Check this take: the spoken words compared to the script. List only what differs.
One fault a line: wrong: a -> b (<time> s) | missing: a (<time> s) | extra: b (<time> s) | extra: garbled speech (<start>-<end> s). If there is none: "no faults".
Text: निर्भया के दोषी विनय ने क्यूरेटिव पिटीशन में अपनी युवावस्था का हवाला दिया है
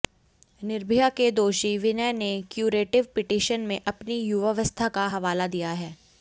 no faults